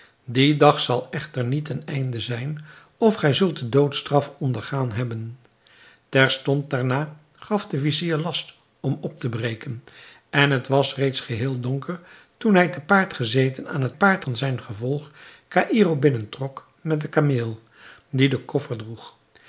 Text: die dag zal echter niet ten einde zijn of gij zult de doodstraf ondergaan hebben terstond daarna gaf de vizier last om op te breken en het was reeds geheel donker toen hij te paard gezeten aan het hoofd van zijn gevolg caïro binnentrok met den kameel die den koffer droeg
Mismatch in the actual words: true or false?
true